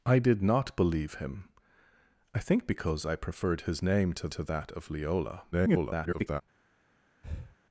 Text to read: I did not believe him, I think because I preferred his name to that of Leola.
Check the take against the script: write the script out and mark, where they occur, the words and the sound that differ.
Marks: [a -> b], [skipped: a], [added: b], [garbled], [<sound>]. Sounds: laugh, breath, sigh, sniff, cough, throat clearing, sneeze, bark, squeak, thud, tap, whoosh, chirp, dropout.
I did not believe him, I think because I preferred his name to [added: to] that of Leola. [garbled] [breath]